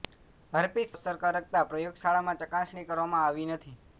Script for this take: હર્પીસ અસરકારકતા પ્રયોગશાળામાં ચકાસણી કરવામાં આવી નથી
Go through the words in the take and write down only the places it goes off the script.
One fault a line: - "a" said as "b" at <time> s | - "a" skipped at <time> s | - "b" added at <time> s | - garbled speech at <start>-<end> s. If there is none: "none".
none